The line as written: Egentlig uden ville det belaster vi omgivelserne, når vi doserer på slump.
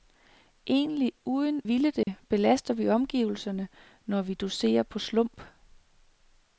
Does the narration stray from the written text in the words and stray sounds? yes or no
yes